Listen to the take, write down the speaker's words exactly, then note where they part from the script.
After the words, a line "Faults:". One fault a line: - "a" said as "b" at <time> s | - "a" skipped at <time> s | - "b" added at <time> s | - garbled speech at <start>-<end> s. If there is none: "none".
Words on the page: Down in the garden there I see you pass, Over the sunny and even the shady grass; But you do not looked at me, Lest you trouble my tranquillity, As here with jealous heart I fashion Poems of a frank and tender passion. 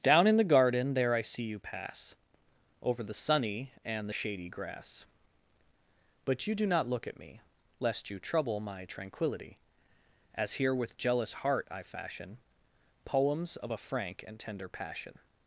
Down in the garden there I see you pass, Over the sunny and the shady grass; But you do not look at me, Lest you trouble my tranquillity, As here with jealous heart I fashion Poems of a frank and tender passion.
Faults:
- "even" skipped at 4.1 s
- "looked" said as "look" at 6.9 s